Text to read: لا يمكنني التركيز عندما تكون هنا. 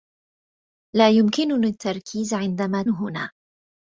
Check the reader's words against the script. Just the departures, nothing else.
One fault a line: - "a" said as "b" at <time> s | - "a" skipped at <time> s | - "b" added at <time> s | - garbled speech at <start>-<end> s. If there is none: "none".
- "تكون" skipped at 2.8 s